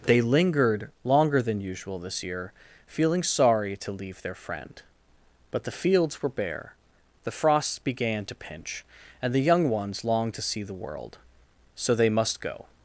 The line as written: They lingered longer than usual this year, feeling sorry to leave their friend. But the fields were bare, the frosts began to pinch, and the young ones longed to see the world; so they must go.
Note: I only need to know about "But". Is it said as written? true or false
true